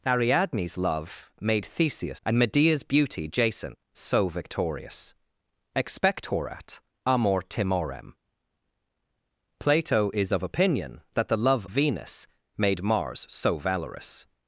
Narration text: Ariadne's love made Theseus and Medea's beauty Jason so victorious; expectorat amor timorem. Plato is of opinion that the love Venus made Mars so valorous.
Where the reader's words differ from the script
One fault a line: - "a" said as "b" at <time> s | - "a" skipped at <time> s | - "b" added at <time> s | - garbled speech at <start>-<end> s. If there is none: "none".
none